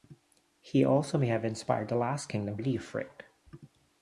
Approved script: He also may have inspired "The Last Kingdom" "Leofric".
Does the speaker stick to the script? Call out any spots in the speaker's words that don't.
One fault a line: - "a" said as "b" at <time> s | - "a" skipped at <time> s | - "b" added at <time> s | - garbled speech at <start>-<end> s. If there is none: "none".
none